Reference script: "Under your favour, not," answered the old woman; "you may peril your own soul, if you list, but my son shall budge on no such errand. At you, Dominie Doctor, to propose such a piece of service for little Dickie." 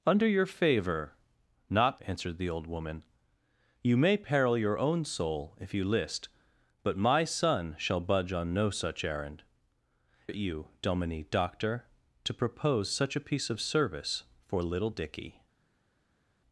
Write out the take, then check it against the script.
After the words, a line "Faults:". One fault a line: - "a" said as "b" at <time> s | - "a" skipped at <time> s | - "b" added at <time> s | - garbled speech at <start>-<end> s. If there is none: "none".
"Under your favour, not," answered the old woman; "you may peril your own soul, if you list, but my son shall budge on no such errand. At you, Dominie Doctor, to propose such a piece of service for little Dickie."
Faults:
none